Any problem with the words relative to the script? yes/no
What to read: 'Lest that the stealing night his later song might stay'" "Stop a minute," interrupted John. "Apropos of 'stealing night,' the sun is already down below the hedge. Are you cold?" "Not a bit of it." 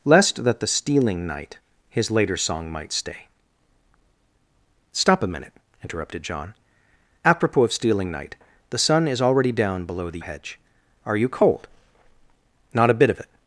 no